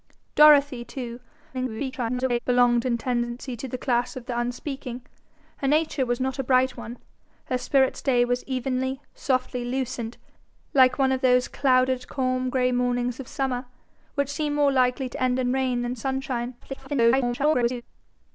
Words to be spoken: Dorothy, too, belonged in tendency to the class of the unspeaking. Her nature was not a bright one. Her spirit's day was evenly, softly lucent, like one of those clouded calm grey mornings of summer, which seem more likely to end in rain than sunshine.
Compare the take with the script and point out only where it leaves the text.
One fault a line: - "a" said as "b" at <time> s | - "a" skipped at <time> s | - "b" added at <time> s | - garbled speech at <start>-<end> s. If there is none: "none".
- garbled speech at 1.5-2.4 s
- garbled speech at 16.6-17.8 s